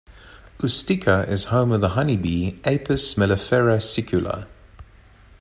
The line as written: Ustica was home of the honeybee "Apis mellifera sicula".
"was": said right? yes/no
no